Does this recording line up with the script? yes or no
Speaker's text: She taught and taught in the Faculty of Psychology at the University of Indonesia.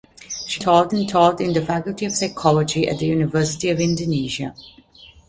yes